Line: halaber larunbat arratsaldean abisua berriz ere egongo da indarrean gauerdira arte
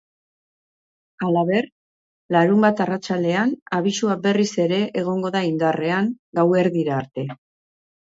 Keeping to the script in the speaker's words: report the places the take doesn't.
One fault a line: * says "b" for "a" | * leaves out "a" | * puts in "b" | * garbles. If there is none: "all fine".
all fine